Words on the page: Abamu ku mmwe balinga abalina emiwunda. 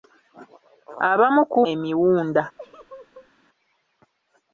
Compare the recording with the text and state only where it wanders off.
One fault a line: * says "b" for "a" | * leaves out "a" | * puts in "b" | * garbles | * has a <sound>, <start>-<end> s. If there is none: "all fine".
* leaves out "mmwe balinga abalina"
* has a laugh, 2.6-3.3 s